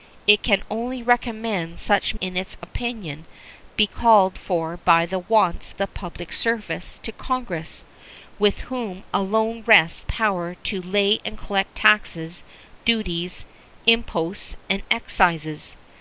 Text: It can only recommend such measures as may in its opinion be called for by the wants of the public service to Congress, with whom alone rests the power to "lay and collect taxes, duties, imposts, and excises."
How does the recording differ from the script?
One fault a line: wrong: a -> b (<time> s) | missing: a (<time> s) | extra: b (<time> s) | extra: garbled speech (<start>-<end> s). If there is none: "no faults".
missing: measures as may (2.1 s)
missing: of (5.7 s)
missing: the (10.0 s)